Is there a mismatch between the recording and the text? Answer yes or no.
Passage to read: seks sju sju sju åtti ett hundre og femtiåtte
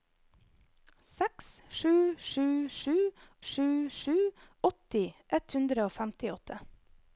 yes